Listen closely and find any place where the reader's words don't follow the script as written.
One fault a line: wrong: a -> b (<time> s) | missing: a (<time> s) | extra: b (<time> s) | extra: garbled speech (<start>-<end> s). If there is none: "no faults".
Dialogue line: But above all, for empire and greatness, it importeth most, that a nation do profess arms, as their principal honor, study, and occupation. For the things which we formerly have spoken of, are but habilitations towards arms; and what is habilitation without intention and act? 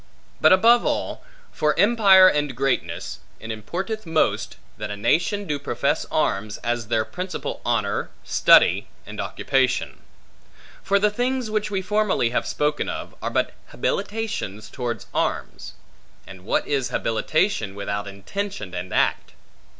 no faults